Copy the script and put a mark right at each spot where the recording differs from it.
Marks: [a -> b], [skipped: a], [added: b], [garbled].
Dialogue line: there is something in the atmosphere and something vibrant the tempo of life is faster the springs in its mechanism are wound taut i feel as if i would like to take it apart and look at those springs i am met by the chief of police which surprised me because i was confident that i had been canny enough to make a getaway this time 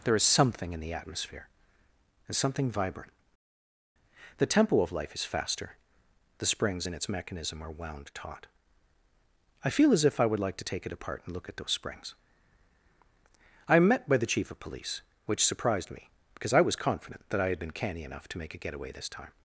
there is something in the atmosphere and something vibrant the tempo of life is faster the springs in its mechanism are wound taut i feel as if i would like to take it apart and look at those springs i am met by the chief of police which surprised me because i was confident that i had been canny enough to make a getaway this time